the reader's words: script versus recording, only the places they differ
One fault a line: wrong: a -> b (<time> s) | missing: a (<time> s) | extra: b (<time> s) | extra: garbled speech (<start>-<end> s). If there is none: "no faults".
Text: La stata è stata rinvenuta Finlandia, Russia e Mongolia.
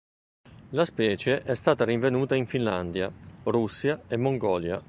wrong: stata -> specie (0.8 s)
extra: in (2.3 s)